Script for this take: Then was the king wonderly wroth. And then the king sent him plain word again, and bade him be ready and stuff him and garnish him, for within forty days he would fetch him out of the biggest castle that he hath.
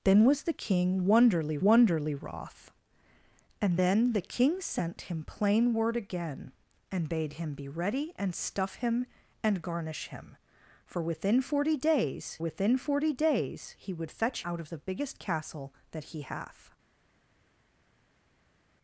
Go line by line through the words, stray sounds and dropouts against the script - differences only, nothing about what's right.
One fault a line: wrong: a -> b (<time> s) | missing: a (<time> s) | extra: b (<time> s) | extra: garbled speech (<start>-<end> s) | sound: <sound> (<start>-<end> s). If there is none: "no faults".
extra: wonderly (1.6 s)
extra: within forty days (12.4 s)
missing: him (14.4 s)